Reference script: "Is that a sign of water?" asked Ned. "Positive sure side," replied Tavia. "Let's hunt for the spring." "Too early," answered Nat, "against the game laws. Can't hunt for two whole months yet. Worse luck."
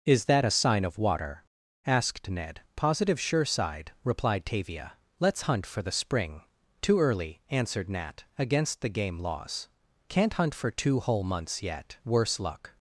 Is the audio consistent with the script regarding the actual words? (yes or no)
yes